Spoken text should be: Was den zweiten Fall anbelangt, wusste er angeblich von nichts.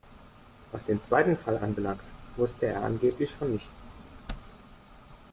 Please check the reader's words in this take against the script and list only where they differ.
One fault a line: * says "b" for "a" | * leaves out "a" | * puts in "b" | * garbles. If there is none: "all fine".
all fine